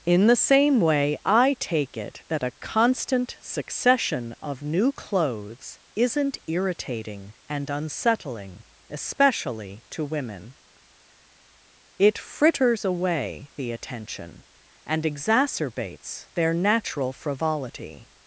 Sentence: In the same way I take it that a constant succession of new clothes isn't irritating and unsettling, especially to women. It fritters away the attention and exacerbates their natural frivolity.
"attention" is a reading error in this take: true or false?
false